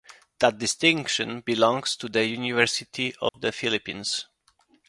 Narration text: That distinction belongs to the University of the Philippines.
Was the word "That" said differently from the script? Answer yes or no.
no